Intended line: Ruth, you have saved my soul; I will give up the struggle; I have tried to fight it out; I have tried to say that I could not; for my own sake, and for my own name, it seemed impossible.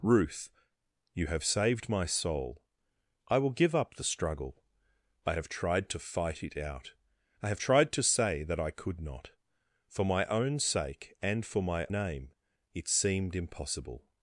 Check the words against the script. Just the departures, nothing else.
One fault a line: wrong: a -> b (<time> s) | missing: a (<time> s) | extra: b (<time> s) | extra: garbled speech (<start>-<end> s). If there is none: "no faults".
missing: own (11.9 s)